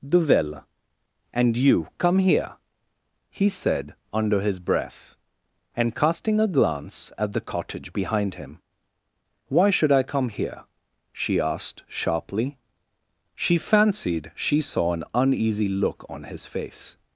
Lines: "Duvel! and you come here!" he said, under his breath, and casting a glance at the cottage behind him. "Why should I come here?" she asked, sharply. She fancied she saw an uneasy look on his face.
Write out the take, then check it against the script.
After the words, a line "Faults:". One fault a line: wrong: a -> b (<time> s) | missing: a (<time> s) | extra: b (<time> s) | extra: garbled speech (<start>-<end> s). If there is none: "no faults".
"Duvel! and you come here!" he said, under his breath, and casting a glance at the cottage behind him. "Why should I come here?" she asked, sharply. She fancied she saw an uneasy look on his face.
Faults:
no faults